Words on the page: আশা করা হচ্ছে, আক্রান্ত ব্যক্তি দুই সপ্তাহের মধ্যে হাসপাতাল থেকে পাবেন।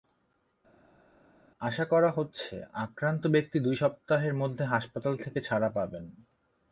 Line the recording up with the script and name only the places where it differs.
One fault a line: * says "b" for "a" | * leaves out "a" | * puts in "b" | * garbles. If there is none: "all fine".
* puts in "ছাড়া"